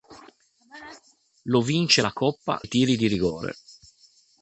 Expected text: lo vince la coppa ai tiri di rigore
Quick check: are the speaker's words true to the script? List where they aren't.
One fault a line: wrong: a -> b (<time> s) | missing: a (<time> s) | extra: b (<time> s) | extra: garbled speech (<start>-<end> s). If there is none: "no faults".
no faults